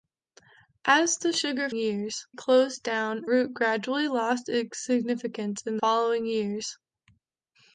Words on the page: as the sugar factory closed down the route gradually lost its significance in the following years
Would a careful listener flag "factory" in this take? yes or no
yes